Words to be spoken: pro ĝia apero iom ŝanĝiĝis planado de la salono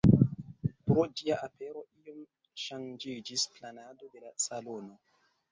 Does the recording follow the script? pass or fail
pass